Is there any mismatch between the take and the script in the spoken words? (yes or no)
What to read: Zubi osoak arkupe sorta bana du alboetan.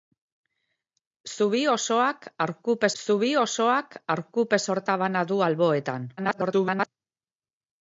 yes